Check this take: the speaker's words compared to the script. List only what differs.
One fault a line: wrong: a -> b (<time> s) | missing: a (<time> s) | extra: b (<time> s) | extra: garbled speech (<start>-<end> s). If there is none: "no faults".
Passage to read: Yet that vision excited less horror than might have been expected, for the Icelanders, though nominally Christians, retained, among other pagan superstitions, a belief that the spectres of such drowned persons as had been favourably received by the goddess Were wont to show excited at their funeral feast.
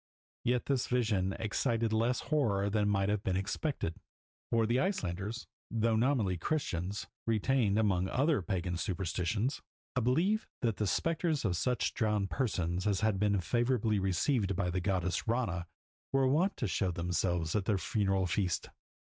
wrong: that -> this (0.7 s)
extra: Rana (15.3 s)
wrong: excited -> themselves (16.9 s)